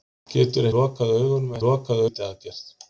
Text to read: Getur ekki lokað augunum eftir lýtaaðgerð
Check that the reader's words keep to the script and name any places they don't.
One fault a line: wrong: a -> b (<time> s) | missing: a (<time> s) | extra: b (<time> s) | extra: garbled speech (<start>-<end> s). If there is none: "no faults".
missing: ekki (0.7 s)
wrong: eftir -> lokað (1.7 s)